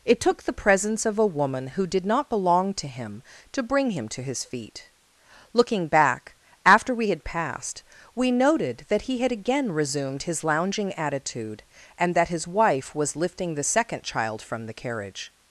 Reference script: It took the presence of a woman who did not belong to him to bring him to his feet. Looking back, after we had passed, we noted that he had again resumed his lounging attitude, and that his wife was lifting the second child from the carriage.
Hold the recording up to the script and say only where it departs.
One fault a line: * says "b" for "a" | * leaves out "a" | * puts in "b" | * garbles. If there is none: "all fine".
all fine